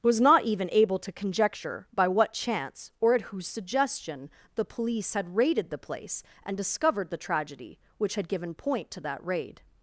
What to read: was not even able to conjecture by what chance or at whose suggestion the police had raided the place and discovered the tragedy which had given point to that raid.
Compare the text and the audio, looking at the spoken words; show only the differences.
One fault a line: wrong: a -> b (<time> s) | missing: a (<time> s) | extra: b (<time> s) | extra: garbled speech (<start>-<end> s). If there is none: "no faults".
no faults